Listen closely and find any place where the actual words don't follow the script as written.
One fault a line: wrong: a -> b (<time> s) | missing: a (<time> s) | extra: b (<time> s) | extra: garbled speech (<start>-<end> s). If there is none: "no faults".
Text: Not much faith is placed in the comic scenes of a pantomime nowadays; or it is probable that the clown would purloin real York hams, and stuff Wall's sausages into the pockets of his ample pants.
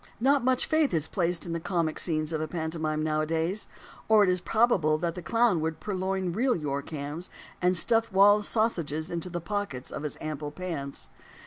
no faults